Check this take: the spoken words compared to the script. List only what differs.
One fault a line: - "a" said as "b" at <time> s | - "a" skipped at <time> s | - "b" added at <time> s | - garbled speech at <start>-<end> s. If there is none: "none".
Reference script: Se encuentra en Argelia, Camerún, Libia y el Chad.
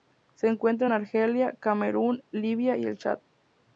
none